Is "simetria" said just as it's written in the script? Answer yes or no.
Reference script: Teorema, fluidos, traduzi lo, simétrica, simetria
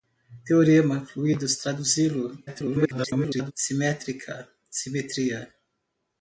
yes